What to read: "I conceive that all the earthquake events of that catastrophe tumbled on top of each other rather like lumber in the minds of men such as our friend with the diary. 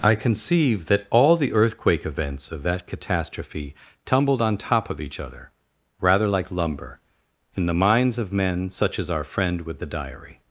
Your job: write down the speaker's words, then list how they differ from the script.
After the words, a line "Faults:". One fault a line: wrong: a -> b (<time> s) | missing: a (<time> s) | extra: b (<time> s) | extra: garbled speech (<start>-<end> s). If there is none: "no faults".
"I conceive that all the earthquake events of that catastrophe tumbled on top of each other rather like lumber in the minds of men such as our friend with the diary.
Faults:
no faults